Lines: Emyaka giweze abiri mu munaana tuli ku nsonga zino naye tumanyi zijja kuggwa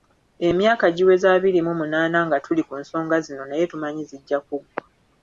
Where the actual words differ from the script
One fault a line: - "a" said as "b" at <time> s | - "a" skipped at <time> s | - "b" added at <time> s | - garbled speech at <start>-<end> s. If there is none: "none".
- "nga" added at 2.3 s